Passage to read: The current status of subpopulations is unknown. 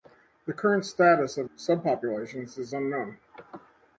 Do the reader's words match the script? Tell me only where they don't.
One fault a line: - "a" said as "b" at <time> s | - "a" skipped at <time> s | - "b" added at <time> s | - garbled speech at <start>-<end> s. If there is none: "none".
none